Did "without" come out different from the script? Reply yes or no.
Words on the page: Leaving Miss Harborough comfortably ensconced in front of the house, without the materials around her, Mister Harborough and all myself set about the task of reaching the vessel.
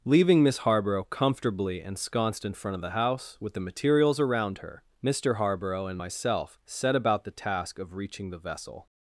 yes